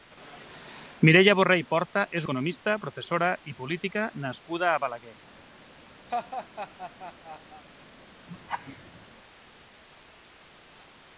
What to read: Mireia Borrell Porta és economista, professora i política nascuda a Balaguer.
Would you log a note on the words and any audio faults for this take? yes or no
yes